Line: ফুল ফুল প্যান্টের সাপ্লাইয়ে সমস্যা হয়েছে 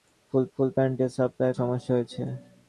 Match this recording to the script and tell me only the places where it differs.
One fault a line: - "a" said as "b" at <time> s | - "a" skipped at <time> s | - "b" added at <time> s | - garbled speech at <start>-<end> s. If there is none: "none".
none